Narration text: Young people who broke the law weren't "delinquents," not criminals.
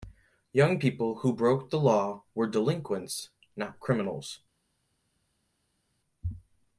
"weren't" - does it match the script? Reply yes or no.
no